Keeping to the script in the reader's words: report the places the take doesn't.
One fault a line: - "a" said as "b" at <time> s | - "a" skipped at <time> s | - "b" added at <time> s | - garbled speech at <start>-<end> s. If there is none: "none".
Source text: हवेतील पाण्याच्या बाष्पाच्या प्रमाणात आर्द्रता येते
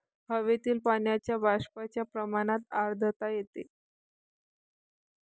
none